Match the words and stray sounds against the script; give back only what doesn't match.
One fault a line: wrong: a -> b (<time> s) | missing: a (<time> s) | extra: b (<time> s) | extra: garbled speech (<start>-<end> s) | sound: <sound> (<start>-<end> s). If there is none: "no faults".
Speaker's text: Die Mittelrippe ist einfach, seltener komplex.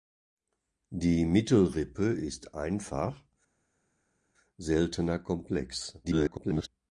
extra: garbled speech (6.0-6.7 s)